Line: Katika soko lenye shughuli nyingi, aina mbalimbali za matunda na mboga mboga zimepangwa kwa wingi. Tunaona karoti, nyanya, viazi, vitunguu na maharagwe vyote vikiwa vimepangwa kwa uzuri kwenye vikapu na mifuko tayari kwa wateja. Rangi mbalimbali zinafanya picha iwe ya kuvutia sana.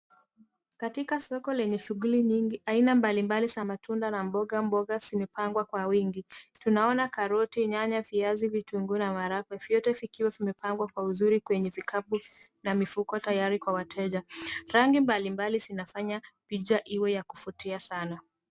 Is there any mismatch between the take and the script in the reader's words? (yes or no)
no